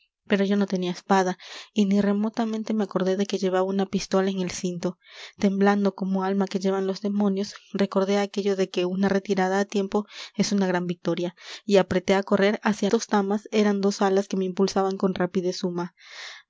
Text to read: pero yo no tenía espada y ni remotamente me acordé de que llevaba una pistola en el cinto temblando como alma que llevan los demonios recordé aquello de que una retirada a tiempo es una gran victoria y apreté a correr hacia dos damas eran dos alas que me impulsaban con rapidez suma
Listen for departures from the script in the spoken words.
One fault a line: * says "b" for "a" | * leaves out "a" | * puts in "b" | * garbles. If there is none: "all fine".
all fine